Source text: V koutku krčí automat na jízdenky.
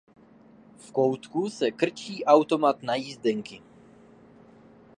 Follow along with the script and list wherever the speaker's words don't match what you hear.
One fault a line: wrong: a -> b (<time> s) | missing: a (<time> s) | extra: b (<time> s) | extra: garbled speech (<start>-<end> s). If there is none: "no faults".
extra: se (1.5 s)